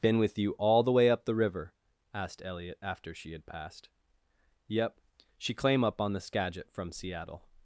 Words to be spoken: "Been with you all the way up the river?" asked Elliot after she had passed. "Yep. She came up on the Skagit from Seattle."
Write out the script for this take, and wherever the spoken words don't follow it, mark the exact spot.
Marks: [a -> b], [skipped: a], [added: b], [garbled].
"Been with you all the way up the river?" asked Elliot after she had passed. "Yep. She [came -> claim] up on the Skagit from Seattle."